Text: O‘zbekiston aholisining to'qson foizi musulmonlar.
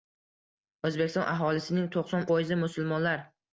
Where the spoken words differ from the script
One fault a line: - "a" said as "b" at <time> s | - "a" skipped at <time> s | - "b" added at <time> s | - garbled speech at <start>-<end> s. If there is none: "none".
none